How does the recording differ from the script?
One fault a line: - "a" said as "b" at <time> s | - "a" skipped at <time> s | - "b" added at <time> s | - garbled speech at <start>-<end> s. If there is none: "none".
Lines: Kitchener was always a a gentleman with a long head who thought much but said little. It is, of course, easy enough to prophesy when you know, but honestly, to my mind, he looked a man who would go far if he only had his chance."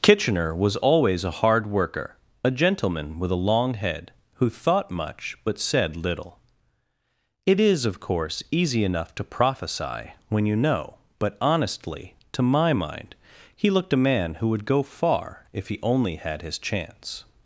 - "hard worker" added at 1.4 s